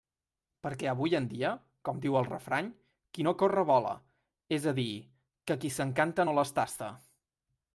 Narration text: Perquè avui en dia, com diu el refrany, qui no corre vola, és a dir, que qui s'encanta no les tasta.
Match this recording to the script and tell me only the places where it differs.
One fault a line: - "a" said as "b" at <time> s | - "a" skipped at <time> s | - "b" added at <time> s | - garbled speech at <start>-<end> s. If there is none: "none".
none